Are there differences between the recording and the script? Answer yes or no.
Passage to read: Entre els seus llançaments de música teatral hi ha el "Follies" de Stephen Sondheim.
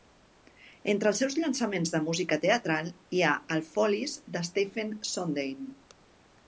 no